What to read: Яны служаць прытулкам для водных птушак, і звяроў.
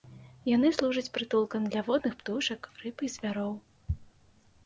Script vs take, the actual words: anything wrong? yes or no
yes